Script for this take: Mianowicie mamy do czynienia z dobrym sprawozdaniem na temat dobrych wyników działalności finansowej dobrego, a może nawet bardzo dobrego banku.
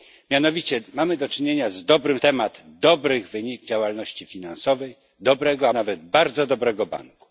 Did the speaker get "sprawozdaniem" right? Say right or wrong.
wrong